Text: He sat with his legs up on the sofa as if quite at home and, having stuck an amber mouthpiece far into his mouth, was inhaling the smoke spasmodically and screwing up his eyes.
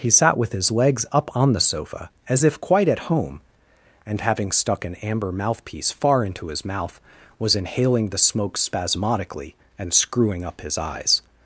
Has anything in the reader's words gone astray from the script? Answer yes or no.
no